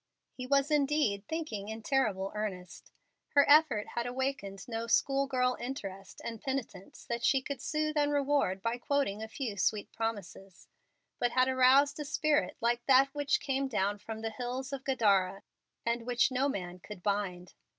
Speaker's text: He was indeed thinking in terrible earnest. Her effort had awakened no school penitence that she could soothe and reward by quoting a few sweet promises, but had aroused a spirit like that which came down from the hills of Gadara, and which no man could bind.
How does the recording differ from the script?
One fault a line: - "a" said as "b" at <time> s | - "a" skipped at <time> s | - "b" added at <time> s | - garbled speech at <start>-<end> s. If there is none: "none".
- "girl interest and" added at 5.3 s